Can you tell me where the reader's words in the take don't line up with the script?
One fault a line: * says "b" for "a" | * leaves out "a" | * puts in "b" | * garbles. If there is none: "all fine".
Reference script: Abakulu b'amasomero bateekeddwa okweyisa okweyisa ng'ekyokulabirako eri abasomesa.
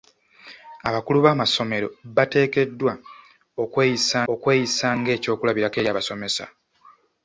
all fine